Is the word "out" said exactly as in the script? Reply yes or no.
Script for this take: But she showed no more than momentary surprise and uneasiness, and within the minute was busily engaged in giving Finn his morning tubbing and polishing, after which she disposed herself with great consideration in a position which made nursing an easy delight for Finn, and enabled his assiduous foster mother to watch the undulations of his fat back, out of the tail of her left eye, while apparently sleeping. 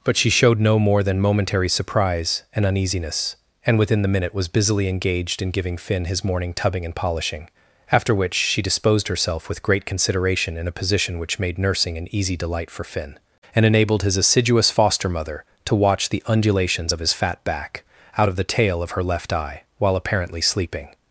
yes